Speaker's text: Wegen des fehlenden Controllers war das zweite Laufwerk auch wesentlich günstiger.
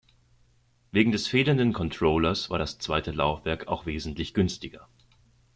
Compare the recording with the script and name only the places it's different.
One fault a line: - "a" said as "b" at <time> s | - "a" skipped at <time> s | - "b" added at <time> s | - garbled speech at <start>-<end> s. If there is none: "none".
none